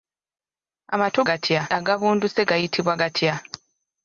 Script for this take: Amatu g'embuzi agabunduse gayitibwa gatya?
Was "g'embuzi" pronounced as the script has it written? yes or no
no